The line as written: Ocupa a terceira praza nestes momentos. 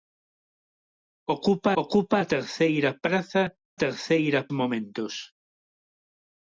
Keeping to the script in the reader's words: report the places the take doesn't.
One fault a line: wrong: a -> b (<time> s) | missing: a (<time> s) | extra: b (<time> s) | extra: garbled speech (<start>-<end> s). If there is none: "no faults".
extra: ocupa (1.8 s)
wrong: nestes -> terceira (3.8 s)